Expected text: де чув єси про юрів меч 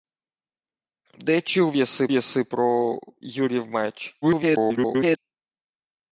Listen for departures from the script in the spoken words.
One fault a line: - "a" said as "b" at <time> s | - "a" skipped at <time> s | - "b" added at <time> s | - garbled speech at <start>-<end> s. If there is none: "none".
- "єси" added at 2.1 s
- garbled speech at 4.2-5.2 s